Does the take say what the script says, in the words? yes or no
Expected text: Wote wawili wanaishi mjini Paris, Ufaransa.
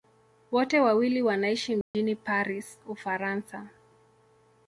yes